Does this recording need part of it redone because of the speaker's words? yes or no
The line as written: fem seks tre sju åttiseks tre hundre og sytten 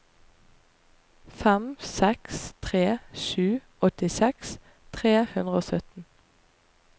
no